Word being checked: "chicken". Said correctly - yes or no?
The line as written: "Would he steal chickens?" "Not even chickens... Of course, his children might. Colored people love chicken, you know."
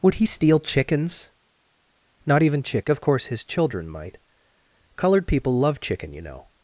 yes